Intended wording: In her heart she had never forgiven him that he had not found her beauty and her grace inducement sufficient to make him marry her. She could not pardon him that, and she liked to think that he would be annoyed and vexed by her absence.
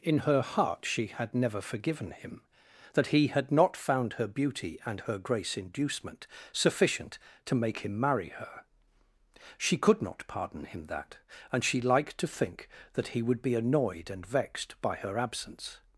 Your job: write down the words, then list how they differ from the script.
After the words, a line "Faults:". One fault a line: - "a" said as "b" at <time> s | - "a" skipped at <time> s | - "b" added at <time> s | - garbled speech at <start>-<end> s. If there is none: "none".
In her heart she had never forgiven him that he had not found her beauty and her grace inducement sufficient to make him marry her. She could not pardon him that, and she liked to think that he would be annoyed and vexed by her absence.
Faults:
none